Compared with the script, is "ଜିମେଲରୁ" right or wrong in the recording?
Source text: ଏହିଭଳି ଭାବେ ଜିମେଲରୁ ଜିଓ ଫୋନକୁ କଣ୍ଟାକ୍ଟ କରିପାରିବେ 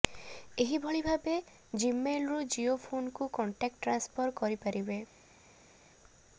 right